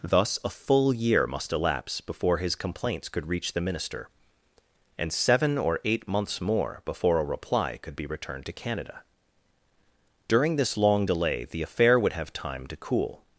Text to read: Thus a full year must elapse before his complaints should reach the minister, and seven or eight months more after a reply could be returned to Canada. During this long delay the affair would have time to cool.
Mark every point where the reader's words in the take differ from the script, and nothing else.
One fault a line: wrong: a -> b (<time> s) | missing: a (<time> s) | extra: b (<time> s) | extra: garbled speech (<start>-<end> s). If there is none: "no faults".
wrong: should -> could (3.1 s)
wrong: after -> before (6.8 s)